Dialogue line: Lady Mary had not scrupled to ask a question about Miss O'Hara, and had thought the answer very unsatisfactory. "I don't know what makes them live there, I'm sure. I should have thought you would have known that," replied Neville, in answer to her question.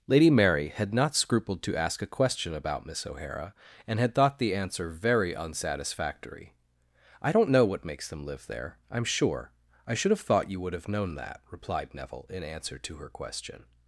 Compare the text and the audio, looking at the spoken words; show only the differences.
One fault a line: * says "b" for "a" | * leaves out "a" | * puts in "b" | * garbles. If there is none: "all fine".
all fine